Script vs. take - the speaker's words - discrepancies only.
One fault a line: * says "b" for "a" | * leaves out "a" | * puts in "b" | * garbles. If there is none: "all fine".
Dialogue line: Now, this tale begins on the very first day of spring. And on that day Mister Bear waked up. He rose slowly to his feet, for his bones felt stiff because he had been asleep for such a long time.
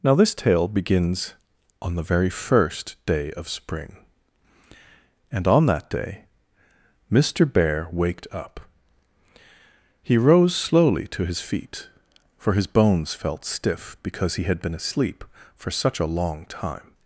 all fine